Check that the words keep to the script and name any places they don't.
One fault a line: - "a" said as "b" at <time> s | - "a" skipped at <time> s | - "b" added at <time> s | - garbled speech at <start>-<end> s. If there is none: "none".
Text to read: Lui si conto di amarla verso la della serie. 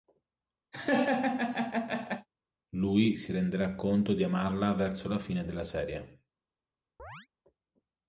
- "renderà" added at 3.3 s
- "fine" added at 5.2 s